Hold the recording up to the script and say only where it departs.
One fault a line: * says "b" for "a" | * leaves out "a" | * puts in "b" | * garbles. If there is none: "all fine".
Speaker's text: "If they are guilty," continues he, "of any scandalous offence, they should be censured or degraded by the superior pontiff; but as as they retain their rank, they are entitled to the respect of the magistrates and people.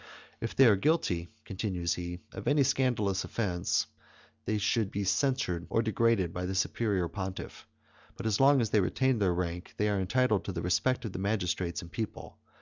* puts in "long"